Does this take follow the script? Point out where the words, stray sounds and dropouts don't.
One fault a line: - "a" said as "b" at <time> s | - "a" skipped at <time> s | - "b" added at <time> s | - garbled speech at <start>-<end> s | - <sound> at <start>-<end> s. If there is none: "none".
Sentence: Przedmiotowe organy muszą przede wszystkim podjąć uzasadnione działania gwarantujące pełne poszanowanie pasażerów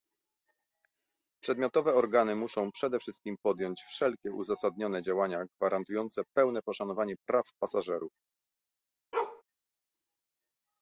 - "wszelkie" added at 3.8 s
- "praw" added at 7.3 s
- bark at 9.1-9.4 s